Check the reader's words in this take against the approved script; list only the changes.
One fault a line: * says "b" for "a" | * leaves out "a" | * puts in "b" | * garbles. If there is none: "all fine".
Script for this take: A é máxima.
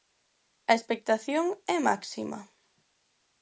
* puts in "expectación"